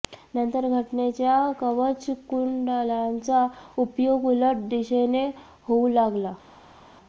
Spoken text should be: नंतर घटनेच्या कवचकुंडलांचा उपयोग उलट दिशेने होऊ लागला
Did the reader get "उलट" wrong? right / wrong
right